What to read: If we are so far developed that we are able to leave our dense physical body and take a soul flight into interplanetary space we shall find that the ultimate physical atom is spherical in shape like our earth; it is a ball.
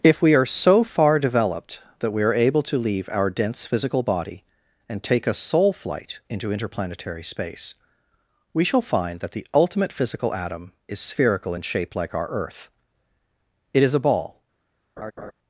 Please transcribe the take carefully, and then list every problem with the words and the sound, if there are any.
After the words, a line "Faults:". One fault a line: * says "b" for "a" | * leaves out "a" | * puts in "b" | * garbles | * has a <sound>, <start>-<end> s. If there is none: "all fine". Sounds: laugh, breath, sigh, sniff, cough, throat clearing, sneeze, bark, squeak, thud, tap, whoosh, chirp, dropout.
If we are so far developed that we are able to leave our dense physical body and take a soul flight into interplanetary space we shall find that the ultimate physical atom is spherical in shape like our earth; it is a ball.
Faults:
* has a laugh, 15.0-15.3 s